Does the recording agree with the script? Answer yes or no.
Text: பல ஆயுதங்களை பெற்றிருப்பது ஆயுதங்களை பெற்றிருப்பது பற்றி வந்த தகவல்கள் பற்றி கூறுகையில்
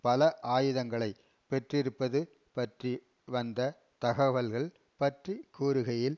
no